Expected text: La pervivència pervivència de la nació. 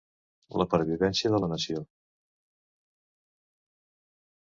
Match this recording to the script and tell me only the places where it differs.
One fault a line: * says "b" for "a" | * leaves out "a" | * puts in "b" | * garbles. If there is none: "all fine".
* leaves out "pervivència"